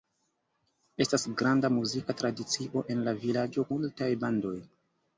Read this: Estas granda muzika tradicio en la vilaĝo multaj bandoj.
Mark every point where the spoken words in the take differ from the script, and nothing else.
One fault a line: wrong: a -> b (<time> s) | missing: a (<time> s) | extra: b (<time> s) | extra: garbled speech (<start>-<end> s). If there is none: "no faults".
no faults